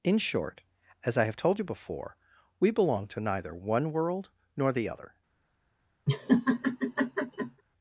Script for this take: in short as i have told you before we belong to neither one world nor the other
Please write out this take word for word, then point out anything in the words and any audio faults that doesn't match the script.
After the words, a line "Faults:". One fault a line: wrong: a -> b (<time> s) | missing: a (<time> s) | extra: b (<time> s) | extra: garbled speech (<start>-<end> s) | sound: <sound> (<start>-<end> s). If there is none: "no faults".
in short as i have told you before we belong to neither one world nor the other
Faults:
sound: laugh (6.1-7.6 s)